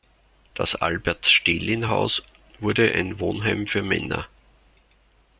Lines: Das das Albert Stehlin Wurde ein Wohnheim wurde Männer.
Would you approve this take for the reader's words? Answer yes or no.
no